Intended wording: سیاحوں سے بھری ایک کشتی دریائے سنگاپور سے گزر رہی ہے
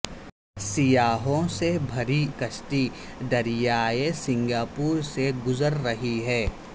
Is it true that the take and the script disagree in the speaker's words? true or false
true